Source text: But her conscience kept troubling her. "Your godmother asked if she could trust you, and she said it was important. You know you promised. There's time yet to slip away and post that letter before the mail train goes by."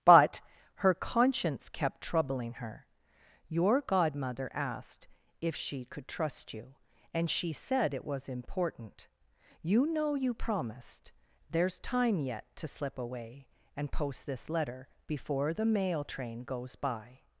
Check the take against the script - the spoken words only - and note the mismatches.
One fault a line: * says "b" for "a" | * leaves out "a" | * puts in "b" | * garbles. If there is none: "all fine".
* says "this" for "that"